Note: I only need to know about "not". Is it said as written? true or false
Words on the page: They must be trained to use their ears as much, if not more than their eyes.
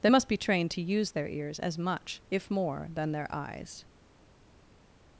false